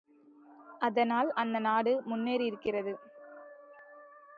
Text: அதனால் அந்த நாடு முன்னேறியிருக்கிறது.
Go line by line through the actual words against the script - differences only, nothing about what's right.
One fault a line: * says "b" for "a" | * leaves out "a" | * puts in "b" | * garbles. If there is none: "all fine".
all fine